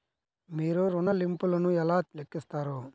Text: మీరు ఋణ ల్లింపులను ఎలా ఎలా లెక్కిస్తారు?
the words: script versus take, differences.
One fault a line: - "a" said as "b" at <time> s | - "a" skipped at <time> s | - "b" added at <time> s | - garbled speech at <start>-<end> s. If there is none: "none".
- "ఎలా" skipped at 2.0 s